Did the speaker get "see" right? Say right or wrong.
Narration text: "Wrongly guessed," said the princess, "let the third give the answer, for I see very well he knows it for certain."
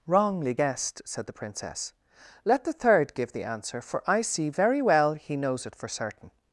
right